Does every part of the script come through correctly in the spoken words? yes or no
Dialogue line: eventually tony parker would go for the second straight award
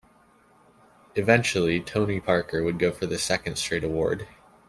yes